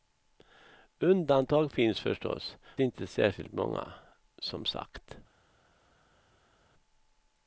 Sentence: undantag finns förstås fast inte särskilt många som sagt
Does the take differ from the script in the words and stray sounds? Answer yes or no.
yes